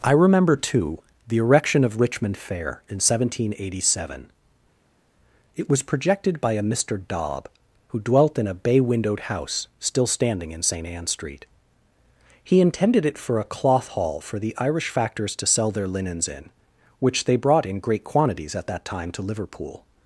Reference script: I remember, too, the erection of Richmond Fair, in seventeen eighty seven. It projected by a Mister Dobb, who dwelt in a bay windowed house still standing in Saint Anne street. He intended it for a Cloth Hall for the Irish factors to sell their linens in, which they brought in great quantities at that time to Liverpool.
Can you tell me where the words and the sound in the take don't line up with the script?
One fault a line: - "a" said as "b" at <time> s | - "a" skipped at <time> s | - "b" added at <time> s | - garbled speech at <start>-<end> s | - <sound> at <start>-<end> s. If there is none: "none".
- "was" added at 5.7 s